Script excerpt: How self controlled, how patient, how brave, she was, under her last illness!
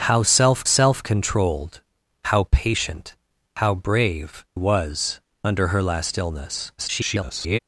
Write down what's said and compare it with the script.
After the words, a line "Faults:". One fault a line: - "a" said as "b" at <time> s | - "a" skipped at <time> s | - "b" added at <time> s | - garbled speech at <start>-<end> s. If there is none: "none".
How self self controlled, how patient, how brave, was, under her last illness! [garbled]
Faults:
- "self" added at 0.6 s
- "she" skipped at 4.4 s
- garbled speech at 6.8-7.6 s